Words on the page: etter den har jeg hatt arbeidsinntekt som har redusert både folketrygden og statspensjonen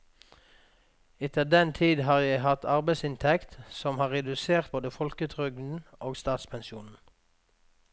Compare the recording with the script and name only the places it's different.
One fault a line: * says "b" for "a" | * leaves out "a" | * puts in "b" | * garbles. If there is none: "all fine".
* puts in "tid"